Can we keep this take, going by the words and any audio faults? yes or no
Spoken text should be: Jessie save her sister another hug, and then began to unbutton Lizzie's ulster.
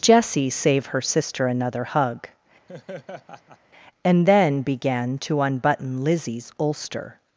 no